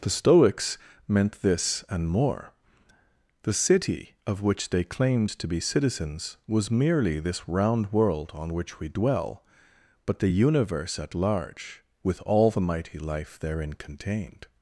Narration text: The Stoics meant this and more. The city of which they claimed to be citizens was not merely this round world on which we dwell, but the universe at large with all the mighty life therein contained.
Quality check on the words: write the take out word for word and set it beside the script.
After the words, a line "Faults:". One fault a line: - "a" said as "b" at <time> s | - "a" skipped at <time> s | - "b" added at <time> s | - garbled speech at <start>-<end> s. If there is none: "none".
The Stoics meant this and more. The city of which they claimed to be citizens was merely this round world on which we dwell, but the universe at large with all the mighty life therein contained.
Faults:
- "not" skipped at 6.7 s